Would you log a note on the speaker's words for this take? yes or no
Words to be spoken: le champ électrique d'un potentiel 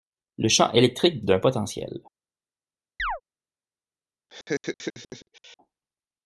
no